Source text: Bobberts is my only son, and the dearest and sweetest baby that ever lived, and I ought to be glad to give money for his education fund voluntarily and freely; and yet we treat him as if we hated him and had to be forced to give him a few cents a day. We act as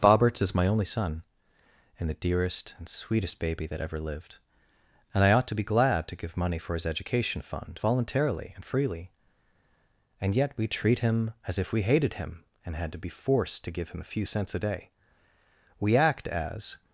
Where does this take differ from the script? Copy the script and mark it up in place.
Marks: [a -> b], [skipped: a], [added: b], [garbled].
Bobberts is my only son, and the dearest and sweetest baby that ever lived, and I ought to be glad to give money for his education fund voluntarily and freely; and yet we treat him as if we hated him and had to be forced to give him a few cents a day. We act as